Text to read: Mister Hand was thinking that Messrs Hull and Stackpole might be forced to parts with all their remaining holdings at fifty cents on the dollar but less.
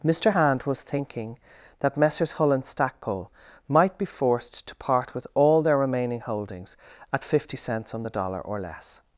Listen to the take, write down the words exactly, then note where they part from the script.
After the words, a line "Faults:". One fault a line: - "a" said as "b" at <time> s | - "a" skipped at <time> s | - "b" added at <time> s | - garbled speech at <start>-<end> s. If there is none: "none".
Mister Hand was thinking that Messrs Hull and Stackpole might be forced to part with all their remaining holdings at fifty cents on the dollar or less.
Faults:
- "parts" said as "part" at 4.8 s
- "but" said as "or" at 8.4 s